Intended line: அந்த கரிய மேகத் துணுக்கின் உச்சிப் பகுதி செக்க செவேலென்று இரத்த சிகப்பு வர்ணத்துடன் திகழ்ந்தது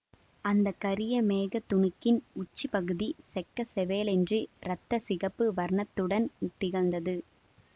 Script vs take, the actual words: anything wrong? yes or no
no